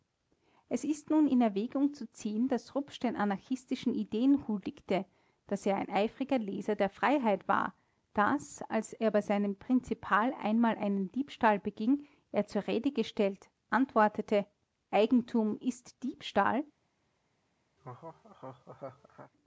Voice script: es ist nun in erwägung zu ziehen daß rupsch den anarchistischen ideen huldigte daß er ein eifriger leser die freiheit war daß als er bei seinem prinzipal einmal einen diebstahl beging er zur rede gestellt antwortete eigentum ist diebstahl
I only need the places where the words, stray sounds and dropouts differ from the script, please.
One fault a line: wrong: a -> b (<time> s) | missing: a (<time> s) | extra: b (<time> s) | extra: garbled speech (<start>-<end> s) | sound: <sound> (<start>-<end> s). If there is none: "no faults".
wrong: die -> der (6.8 s)
sound: laugh (17.8-19.3 s)